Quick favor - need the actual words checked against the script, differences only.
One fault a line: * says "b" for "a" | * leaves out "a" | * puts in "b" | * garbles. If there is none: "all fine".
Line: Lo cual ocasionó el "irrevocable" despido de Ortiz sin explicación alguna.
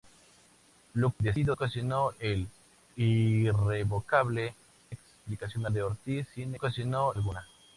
* says "despido" for "cual"
* says "explicación" for "despido"
* says "ocasionó" for "explicación"